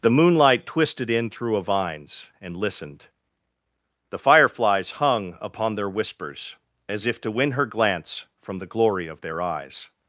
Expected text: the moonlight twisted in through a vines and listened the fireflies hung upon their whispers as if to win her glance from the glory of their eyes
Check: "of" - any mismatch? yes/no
no